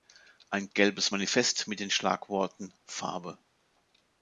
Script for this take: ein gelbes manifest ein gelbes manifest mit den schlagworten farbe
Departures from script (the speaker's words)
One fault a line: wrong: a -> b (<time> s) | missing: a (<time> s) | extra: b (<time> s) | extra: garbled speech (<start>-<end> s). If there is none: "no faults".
missing: ein gelbes manifest (1.7 s)